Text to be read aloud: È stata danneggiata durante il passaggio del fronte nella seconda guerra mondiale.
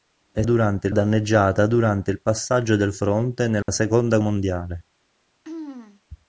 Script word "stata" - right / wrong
wrong